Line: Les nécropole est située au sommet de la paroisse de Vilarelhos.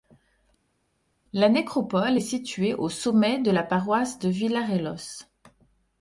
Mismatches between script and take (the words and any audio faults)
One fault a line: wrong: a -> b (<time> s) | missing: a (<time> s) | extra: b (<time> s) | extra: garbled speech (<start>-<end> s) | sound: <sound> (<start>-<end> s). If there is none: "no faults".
wrong: Les -> La (1.3 s)